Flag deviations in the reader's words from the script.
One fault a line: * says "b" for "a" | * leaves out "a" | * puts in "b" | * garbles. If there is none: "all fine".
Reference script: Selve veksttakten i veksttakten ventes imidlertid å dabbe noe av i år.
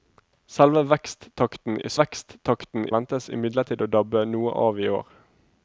all fine